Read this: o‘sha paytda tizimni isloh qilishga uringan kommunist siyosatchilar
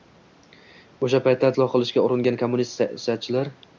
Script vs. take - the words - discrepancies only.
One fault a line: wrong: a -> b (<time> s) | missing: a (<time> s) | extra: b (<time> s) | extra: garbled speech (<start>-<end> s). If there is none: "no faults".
missing: tizimni (1.5 s)